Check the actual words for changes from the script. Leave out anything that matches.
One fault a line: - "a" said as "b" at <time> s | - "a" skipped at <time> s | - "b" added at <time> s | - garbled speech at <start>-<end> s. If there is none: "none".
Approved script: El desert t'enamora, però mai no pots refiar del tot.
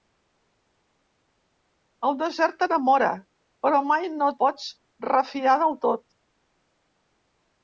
none